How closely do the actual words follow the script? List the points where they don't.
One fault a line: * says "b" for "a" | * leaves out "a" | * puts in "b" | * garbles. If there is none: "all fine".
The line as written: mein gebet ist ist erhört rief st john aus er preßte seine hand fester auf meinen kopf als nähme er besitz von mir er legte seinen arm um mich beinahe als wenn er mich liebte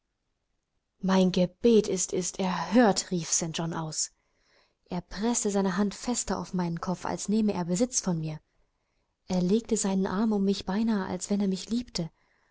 all fine